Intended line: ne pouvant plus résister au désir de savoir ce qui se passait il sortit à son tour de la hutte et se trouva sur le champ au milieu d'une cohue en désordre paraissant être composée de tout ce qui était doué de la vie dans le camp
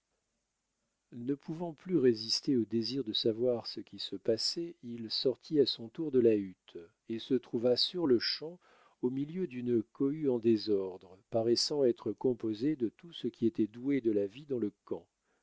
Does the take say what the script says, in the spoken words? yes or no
yes